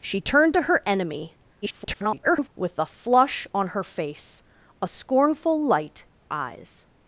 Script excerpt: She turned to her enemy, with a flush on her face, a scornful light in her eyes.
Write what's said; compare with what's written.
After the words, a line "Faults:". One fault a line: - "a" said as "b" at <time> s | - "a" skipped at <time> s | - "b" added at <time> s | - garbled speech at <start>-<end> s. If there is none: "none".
She turned to her enemy, [garbled] with a flush on her face, a scornful light eyes.
Faults:
- garbled speech at 1.6-2.5 s
- "in her" skipped at 6.1 s